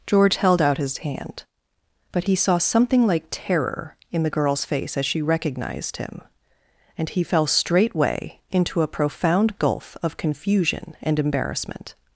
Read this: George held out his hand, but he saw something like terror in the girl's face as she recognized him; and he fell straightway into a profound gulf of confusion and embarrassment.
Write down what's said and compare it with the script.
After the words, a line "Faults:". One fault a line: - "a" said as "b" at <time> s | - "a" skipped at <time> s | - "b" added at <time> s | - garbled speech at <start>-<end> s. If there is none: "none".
George held out his hand, but he saw something like terror in the girl's face as she recognized him; and he fell straightway into a profound gulf of confusion and embarrassment.
Faults:
none